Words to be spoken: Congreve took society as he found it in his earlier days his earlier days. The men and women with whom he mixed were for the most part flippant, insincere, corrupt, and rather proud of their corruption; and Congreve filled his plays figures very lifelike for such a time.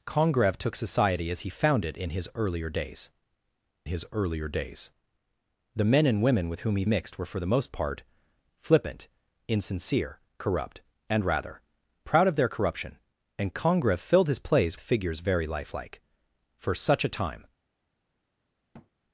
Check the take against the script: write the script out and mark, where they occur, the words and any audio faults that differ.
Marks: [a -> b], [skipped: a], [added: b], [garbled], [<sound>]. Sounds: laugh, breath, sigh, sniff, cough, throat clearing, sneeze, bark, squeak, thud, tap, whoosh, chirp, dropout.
Congreve took society as he found it in his earlier days his earlier days. The men and women with whom he mixed were for the most part flippant, insincere, corrupt, and rather proud of their corruption; and Congreve filled his plays figures very lifelike for such a time. [thud]